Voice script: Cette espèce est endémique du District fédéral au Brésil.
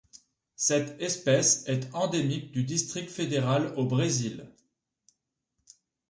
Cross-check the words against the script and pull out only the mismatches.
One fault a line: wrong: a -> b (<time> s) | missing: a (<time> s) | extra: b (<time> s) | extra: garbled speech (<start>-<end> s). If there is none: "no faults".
no faults